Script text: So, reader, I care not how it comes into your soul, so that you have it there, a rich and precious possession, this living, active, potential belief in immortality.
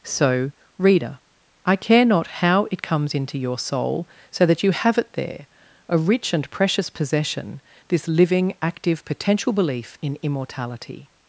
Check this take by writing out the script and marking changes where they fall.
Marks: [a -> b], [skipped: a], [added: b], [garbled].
So, reader, I care not how it comes into your soul, so that you have it there, a rich and precious possession, this living, active, potential belief in immortality.